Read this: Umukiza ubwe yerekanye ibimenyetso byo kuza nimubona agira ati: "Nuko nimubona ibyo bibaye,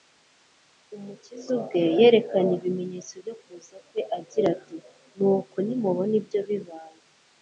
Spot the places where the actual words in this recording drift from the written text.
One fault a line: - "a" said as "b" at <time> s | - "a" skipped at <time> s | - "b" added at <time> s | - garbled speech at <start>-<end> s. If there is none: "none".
- "nimubona" said as "kwe" at 3.9 s